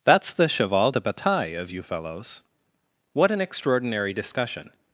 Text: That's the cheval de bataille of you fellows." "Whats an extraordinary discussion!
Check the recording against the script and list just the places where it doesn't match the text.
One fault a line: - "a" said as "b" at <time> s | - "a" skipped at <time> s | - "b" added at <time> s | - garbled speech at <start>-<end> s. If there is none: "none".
- "Whats" said as "What" at 3.1 s